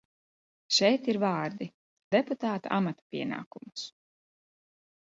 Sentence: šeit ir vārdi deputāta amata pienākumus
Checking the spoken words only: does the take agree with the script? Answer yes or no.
yes